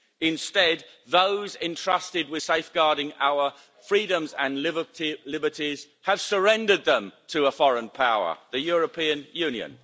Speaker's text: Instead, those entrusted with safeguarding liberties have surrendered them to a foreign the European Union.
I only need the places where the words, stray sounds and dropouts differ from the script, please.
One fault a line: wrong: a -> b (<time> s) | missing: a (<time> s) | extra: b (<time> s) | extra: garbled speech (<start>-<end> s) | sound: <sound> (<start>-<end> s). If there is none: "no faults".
extra: our freedoms and (3.2 s)
extra: power (7.9 s)